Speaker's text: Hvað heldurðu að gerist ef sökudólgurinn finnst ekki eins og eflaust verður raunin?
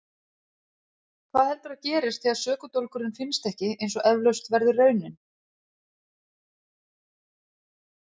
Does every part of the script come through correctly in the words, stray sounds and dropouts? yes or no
no